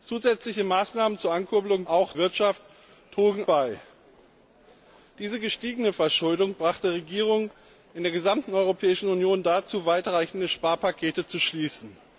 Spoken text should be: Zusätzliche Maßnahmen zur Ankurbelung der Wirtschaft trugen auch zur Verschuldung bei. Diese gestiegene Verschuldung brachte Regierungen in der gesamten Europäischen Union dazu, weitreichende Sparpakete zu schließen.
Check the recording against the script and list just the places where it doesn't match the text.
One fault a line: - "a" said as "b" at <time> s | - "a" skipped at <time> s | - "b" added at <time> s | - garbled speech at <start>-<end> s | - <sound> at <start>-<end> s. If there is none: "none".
- "der" said as "auch" at 1.8 s
- "auch zur Verschuldung" skipped at 3.4 s